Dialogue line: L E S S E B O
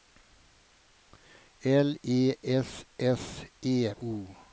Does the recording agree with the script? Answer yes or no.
no